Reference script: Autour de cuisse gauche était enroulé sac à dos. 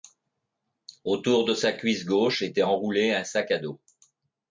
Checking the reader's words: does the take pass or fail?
fail